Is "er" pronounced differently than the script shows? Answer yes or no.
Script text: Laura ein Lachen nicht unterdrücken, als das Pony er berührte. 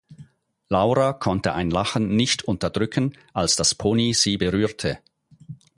yes